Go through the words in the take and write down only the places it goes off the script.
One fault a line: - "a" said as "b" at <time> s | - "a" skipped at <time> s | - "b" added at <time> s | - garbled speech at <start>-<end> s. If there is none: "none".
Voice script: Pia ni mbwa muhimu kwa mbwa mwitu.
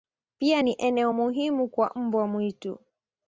- "mbwa" said as "eneo" at 0.8 s